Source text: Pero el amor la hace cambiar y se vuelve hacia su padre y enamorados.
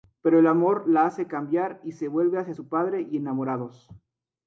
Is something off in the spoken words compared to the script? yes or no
no